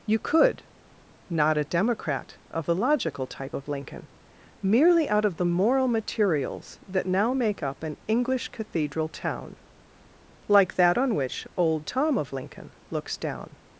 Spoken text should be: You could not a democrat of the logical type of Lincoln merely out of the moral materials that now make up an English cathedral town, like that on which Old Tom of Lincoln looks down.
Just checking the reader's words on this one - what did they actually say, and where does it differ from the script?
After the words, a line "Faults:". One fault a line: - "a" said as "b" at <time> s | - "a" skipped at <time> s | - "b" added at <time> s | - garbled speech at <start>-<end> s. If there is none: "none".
You could not a democrat of the logical type of Lincoln merely out of the moral materials that now make up an English cathedral town, like that on which Old Tom of Lincoln looks down.
Faults:
none